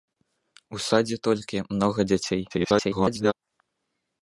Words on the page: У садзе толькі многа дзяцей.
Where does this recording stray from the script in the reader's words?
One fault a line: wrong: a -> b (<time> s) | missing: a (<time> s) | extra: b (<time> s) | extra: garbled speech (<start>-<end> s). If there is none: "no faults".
extra: garbled speech (2.5-3.3 s)